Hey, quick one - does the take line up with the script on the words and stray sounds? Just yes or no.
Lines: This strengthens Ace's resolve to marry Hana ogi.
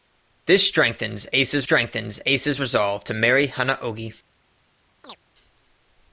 no